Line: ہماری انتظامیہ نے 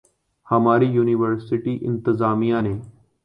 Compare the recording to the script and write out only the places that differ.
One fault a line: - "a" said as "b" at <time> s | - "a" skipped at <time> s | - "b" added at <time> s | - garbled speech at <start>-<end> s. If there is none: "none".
- "یونیورسٹی" added at 0.9 s